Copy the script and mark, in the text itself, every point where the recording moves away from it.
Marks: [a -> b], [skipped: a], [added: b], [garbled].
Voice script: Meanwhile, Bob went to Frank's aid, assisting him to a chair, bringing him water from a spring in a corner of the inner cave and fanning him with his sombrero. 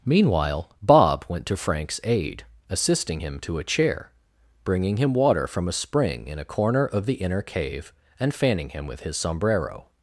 Meanwhile, Bob went to Frank's aid, assisting him to a chair, bringing him water from a spring in a corner of the inner cave and fanning him with his sombrero.